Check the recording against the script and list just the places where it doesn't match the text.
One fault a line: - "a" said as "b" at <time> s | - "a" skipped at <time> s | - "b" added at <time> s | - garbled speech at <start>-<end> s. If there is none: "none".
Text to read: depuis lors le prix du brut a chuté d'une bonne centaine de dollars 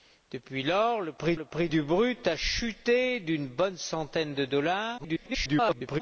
- "le prix" added at 1.3 s
- garbled speech at 5.0-6.0 s